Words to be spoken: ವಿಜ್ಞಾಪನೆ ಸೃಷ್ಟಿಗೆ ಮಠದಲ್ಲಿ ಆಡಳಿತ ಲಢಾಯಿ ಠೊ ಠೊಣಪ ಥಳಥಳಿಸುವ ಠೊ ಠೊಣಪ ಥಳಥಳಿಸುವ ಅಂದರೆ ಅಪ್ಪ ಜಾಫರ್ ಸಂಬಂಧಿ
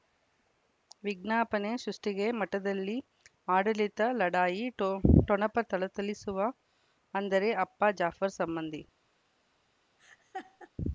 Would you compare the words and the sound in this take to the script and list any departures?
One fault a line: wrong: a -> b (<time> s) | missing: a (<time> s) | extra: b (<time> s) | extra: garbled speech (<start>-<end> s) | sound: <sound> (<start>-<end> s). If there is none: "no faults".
missing: ಠೊ ಠೊಣಪ ಥಳಥಳಿಸುವ (6.4 s)
sound: laugh (10.0-10.7 s)